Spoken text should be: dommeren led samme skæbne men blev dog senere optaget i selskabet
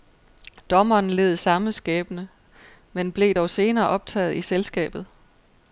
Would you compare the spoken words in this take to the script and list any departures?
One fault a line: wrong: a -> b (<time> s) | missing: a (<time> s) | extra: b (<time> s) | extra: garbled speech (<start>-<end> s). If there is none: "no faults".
no faults